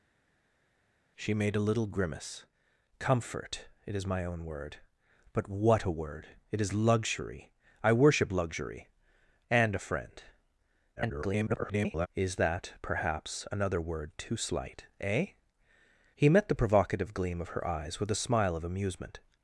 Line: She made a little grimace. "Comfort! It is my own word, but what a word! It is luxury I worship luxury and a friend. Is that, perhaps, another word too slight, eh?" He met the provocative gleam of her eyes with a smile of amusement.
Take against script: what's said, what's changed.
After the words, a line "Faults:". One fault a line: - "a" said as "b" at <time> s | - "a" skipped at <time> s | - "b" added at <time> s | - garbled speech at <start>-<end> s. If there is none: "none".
She made a little grimace. "Comfort! It is my own word, but what a word! It is luxury I worship luxury and a friend. [garbled] Is that, perhaps, another word too slight, eh?" He met the provocative gleam of her eyes with a smile of amusement.
Faults:
- garbled speech at 11.0-12.1 s